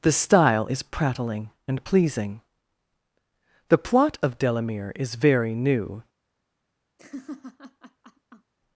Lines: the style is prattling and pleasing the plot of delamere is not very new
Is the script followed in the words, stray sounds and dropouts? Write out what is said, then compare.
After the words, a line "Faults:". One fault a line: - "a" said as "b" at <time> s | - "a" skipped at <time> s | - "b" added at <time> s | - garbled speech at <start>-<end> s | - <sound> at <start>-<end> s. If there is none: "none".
the style is prattling and pleasing the plot of delamere is very new
Faults:
- "not" skipped at 5.1 s
- laugh at 7.0-8.5 s